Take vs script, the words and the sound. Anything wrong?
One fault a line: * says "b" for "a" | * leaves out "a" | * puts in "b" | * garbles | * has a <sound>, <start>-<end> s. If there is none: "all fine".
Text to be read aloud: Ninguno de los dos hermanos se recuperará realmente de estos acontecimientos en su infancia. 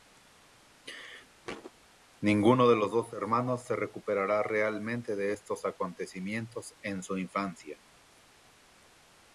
* has a thud, 1.4-1.7 s